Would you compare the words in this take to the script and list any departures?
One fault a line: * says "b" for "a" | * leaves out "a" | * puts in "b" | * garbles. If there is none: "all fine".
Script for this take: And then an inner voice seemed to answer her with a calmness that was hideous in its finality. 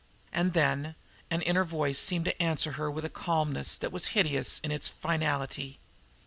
all fine